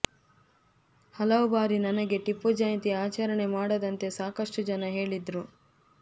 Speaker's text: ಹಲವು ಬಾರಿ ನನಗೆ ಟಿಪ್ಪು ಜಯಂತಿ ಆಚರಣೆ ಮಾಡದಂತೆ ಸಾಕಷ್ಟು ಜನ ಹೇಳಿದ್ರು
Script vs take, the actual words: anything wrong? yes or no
no